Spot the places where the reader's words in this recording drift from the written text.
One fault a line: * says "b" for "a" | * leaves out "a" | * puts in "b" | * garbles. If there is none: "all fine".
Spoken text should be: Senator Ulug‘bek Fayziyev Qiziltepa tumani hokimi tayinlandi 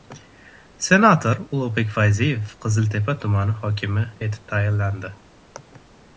* puts in "etib"